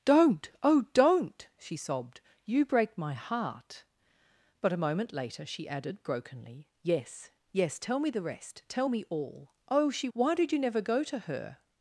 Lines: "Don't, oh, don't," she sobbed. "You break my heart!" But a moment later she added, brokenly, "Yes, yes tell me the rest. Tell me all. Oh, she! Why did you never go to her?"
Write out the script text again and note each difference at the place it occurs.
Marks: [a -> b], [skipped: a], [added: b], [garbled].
"Don't, oh, don't," she sobbed. "You break my heart!" But a moment later she added, brokenly, "Yes, yes tell me the rest. Tell me all. Oh, she! Why did you never go to her?"